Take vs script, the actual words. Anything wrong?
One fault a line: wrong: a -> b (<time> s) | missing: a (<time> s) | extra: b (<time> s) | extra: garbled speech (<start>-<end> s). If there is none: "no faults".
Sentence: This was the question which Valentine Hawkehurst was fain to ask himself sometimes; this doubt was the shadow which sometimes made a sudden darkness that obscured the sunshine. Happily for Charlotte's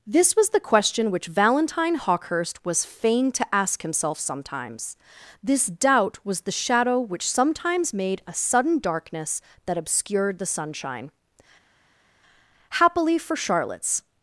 no faults